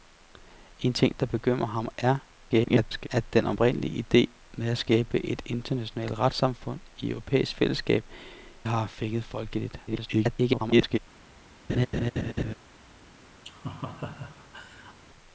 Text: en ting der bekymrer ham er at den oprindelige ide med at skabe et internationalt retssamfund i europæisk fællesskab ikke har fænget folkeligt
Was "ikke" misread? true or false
true